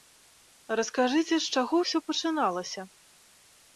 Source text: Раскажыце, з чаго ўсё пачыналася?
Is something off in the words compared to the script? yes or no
no